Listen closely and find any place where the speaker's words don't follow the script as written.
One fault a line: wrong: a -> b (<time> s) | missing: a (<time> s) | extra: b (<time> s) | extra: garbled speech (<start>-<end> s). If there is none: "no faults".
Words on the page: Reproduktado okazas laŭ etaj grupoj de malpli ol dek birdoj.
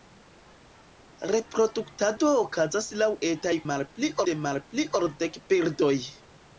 wrong: grupoj -> malpli (3.7 s)